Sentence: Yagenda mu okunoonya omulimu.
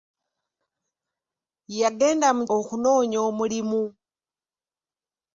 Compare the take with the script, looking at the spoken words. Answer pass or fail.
pass